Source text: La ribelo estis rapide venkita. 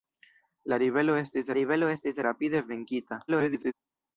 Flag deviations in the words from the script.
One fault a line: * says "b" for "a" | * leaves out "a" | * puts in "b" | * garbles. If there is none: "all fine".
* puts in "ribelo estis"
* garbles